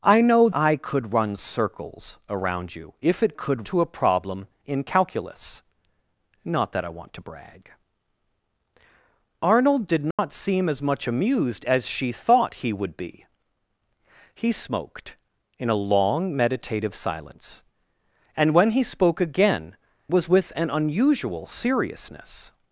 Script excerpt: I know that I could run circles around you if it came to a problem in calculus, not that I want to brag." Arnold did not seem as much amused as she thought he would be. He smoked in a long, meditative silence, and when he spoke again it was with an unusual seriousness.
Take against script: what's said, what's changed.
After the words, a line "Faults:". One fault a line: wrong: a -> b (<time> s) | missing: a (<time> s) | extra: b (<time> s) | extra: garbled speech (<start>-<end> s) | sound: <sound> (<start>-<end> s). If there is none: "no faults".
I know I could run circles around you if it could to a problem in calculus, not that I want to brag." Arnold did not seem as much amused as she thought he would be. He smoked in a long, meditative silence, and when he spoke again was with an unusual seriousness.
Faults:
missing: that (0.5 s)
wrong: came -> could (3.3 s)
sound: dropout (10.1-10.2 s)
missing: it (19.8 s)